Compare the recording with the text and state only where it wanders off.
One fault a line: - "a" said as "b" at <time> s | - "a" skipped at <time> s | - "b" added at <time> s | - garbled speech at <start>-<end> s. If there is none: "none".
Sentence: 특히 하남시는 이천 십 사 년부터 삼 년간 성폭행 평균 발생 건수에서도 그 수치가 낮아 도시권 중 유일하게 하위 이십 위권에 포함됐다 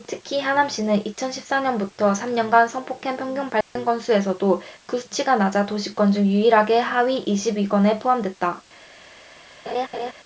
none